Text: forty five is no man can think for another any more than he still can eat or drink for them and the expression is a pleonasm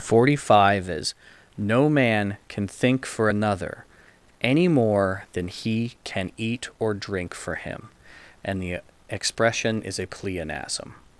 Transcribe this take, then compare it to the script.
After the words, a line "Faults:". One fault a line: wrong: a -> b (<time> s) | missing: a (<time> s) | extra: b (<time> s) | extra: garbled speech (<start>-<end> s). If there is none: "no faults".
forty five is no man can think for another any more than he can eat or drink for him and the expression is a pleonasm
Faults:
missing: still (6.0 s)
wrong: them -> him (7.6 s)